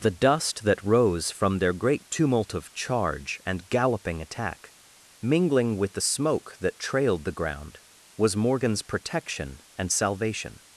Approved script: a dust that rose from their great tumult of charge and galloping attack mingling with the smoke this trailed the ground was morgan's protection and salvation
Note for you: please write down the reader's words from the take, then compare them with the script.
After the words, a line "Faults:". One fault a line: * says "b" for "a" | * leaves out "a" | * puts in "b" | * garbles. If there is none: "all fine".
the dust that rose from their great tumult of charge and galloping attack mingling with the smoke that trailed the ground was morgan's protection and salvation
Faults:
* says "the" for "a"
* says "that" for "this"